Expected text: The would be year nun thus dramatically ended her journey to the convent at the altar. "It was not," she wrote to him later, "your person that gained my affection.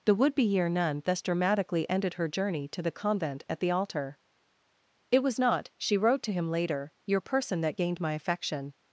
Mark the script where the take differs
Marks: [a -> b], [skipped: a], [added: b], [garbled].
The would be year nun thus dramatically ended her journey to the convent at the altar. "It was not," she wrote to him later, "your person that gained my affection.